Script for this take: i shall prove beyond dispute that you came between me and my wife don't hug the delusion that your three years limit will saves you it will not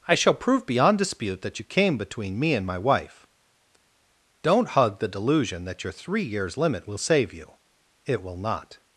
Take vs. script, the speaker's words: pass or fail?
fail